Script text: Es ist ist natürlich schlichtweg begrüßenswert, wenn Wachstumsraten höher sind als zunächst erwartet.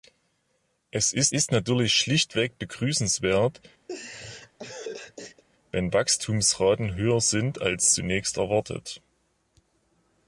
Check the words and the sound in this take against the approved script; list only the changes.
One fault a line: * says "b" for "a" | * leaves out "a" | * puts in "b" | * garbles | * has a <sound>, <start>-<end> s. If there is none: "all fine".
* has a laugh, 3.9-5.4 s